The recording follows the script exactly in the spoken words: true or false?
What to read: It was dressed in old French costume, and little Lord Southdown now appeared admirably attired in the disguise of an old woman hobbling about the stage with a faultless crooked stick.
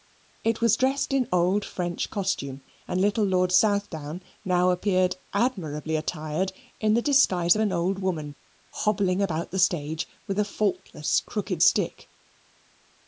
true